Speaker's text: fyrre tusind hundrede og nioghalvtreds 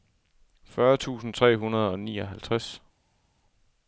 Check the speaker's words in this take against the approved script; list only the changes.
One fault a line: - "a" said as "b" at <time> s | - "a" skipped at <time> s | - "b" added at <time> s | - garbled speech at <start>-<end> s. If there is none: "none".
- "tre" added at 1.3 s